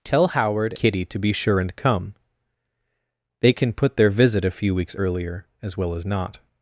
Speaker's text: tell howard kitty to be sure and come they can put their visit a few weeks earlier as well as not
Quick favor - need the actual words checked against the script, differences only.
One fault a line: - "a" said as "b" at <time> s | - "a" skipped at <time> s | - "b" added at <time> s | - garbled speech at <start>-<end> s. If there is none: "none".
none